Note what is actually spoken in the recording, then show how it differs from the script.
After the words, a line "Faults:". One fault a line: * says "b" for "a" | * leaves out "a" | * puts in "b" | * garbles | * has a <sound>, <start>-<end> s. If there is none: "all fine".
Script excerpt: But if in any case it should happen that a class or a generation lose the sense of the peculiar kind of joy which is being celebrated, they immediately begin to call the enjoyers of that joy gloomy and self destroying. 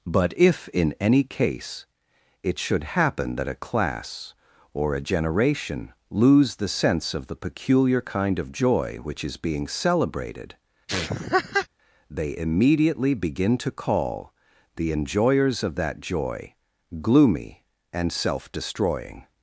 But if in any case it should happen that a class or a generation lose the sense of the peculiar kind of joy which is being celebrated, they immediately begin to call the enjoyers of that joy gloomy and self destroying.
Faults:
* has a laugh, 10.9-11.7 s